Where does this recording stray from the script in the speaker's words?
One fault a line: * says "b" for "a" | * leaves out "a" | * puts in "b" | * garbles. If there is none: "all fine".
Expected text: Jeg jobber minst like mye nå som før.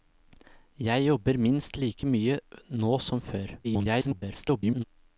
* garbles